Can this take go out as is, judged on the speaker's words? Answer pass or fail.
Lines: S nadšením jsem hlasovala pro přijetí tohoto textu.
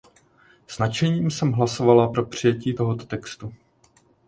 pass